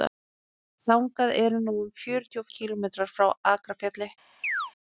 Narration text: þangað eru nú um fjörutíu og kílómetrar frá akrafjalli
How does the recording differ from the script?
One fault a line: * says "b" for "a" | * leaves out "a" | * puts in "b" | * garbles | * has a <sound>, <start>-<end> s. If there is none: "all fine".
* has a chirp, 4.4-4.7 s